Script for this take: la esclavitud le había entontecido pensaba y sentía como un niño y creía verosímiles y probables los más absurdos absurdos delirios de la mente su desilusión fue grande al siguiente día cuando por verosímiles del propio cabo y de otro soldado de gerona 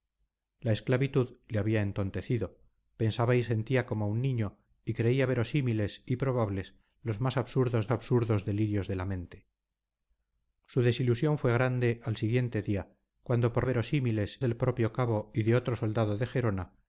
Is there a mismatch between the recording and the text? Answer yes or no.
no